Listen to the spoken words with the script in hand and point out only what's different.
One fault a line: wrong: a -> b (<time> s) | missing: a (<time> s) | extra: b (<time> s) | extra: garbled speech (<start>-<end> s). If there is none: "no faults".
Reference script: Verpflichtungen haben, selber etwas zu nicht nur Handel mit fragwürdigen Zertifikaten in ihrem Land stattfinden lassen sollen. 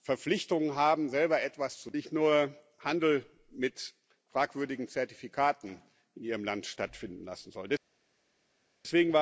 no faults